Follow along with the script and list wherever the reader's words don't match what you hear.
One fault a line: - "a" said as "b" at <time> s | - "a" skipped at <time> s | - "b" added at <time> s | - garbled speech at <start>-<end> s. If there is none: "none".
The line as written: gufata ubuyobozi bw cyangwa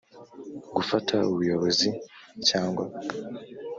none